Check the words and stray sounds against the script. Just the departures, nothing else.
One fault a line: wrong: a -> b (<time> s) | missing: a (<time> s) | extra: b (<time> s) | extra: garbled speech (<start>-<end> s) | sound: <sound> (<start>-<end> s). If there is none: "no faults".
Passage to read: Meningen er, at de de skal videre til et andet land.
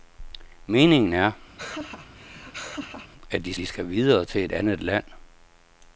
sound: laugh (1.6-3.1 s)